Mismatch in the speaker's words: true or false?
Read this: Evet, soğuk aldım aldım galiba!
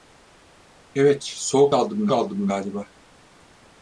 false